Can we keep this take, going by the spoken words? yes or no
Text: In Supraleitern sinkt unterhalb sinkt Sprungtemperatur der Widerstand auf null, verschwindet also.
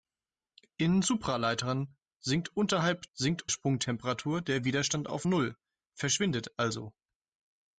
yes